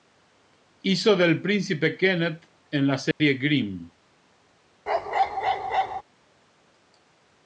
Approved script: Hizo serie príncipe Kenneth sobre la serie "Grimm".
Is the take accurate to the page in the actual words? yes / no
no